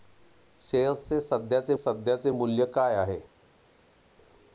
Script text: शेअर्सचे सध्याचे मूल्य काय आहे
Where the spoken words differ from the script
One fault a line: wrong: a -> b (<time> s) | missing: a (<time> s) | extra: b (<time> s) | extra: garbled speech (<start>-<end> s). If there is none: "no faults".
extra: सध्याचे (1.8 s)